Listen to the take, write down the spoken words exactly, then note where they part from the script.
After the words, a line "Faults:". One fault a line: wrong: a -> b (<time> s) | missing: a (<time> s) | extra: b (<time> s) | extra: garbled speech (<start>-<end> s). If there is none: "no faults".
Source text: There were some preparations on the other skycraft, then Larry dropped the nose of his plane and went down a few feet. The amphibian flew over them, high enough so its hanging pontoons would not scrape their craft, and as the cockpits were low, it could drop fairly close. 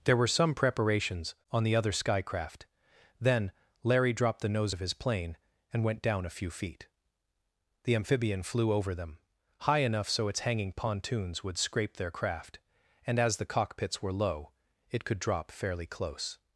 There were some preparations on the other skycraft, then Larry dropped the nose of his plane and went down a few feet. The amphibian flew over them, high enough so its hanging pontoons would scrape their craft, and as the cockpits were low, it could drop fairly close.
Faults:
missing: not (11.6 s)